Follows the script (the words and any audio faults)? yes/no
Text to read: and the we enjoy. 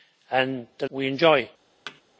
no